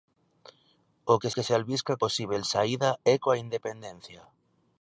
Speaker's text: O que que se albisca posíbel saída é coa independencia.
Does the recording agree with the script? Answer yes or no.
yes